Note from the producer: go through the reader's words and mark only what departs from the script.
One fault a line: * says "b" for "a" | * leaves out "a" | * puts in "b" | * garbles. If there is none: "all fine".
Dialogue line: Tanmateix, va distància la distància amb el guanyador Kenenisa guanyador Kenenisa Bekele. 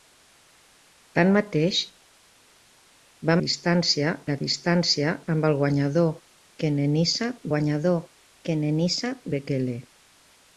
all fine